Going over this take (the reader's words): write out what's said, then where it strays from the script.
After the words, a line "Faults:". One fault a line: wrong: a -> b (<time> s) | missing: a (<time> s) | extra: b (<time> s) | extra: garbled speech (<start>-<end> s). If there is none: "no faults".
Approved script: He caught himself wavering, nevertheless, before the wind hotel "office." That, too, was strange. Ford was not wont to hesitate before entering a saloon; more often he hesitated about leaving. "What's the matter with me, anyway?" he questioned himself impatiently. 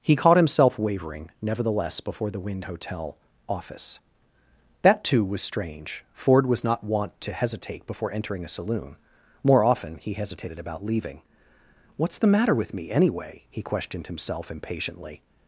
He caught himself wavering, nevertheless, before the wind hotel "office." That, too, was strange. Ford was not wont to hesitate before entering a saloon; more often he hesitated about leaving. "What's the matter with me, anyway?" he questioned himself impatiently.
Faults:
no faults